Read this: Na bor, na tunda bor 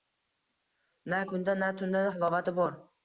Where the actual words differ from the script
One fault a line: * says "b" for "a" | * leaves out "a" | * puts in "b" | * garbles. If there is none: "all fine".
* says "kunda" for "bor"
* puts in "halovati"